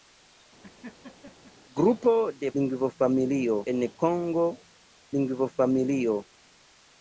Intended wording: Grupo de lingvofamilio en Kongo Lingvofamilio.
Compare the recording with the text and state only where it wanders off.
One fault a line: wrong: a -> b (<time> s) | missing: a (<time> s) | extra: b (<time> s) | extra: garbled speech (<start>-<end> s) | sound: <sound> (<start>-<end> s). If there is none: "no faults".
sound: laugh (0.6-1.5 s)